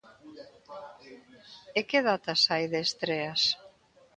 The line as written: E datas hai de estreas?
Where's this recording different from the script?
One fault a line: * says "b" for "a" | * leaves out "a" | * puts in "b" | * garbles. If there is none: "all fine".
* puts in "que"